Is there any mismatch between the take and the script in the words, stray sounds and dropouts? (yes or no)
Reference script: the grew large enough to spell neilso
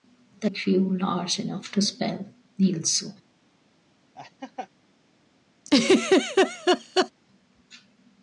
yes